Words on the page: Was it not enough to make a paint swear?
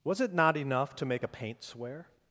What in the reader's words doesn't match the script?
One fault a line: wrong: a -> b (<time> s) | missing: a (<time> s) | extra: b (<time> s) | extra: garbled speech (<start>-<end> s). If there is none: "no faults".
no faults